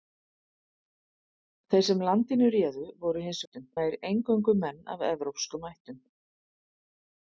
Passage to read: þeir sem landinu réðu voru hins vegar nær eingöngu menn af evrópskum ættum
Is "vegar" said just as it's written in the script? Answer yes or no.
no